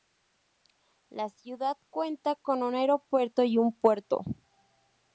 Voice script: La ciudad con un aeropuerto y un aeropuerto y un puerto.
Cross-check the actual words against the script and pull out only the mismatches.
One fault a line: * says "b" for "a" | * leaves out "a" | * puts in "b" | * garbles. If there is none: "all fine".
* puts in "cuenta"
* leaves out "aeropuerto y un"